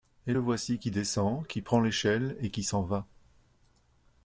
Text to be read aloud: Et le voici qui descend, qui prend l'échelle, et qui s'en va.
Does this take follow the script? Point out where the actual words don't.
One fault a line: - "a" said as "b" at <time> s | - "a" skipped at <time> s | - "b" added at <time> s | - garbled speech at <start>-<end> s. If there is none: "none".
none